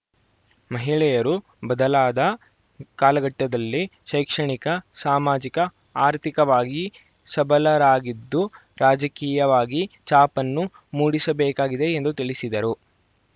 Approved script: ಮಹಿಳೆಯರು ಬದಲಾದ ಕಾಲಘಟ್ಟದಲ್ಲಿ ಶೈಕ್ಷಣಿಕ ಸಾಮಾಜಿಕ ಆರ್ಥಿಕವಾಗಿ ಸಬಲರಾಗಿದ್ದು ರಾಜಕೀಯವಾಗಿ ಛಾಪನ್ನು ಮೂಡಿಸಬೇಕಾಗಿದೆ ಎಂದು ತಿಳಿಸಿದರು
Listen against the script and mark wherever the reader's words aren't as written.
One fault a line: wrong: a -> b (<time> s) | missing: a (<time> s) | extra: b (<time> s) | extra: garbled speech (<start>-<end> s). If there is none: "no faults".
no faults